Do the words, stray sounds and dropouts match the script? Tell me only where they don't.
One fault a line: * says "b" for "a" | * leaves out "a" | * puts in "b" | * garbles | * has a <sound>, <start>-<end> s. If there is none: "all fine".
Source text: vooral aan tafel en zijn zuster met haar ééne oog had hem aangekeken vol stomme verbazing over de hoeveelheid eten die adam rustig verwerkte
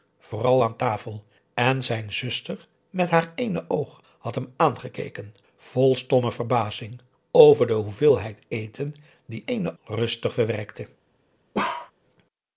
* says "ééne" for "adam"
* has a bark, 11.5-11.9 s